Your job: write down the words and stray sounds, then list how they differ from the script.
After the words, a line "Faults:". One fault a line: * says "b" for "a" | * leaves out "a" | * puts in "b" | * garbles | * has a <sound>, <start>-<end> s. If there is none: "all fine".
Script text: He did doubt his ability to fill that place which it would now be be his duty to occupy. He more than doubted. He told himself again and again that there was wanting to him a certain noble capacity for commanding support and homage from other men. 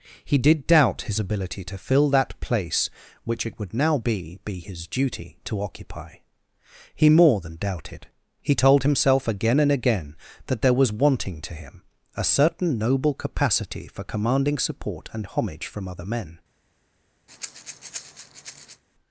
He did doubt his ability to fill that place which it would now be be his duty to occupy. He more than doubted. He told himself again and again that there was wanting to him a certain noble capacity for commanding support and homage from other men.
Faults:
* has a breath, 17.3-18.8 s